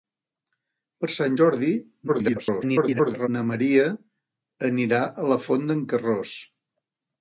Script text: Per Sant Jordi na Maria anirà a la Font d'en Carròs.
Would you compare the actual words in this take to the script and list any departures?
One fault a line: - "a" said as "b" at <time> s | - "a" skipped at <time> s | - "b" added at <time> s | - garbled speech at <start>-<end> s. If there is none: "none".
- garbled speech at 2.1-3.3 s